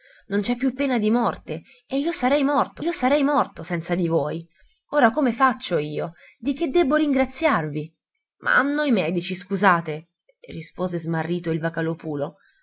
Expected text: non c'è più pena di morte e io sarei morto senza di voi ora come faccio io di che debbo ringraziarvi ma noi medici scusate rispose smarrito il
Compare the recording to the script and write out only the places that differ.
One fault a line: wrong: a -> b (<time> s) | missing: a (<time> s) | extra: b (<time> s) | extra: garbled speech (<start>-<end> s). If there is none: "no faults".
extra: io sarei morto (2.8 s)